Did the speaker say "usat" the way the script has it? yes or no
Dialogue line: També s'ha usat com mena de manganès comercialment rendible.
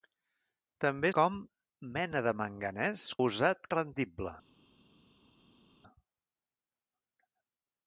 no